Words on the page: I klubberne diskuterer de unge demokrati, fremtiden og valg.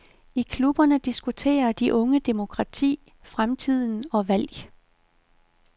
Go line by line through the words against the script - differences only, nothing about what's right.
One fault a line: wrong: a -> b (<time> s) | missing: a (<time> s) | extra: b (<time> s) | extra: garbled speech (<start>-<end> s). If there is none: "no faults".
no faults